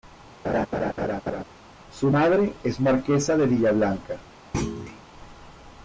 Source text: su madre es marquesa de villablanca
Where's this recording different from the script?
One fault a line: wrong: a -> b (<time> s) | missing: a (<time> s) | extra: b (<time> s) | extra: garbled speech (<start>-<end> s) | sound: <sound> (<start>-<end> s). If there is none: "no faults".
sound: laugh (0.4-1.4 s)
sound: thud (4.5-5.0 s)